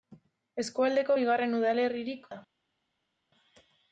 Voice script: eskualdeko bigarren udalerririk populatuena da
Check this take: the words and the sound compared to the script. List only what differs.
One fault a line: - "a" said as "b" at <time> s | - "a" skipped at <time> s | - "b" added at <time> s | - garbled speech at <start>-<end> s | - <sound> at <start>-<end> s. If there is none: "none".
- "populatuena" skipped at 2.3 s